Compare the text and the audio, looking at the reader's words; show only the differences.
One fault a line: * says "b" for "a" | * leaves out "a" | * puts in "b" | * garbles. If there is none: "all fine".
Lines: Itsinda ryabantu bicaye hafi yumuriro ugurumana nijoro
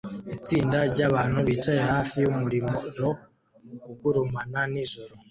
all fine